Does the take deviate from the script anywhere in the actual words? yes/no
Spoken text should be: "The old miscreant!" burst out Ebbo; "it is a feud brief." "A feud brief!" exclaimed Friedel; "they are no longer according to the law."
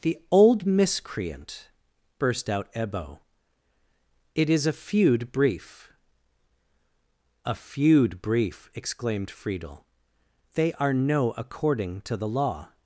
yes